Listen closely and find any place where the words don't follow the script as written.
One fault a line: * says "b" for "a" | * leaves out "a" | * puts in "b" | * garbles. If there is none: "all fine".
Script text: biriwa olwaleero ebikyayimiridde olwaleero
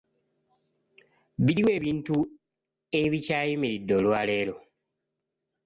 * says "ebintu" for "olwaleero"